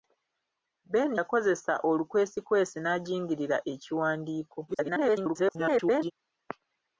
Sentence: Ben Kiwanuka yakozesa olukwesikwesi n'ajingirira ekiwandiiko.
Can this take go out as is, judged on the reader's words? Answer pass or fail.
fail